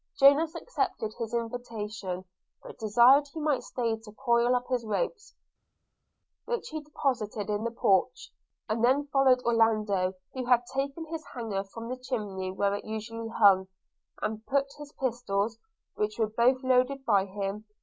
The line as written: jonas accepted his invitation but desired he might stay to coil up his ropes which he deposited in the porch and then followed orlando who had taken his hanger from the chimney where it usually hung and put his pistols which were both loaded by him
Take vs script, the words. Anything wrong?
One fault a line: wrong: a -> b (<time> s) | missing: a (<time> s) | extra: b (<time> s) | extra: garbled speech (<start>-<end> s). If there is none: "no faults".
no faults